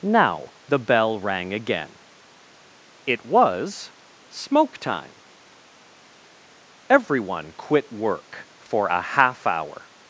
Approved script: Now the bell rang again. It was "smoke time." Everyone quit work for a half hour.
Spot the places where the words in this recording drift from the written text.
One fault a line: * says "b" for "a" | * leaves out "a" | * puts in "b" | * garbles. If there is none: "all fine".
all fine